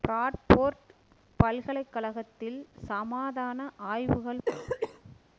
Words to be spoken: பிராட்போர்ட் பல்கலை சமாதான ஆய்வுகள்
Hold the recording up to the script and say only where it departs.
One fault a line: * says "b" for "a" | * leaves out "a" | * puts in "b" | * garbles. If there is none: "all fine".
* puts in "கழகத்தில்"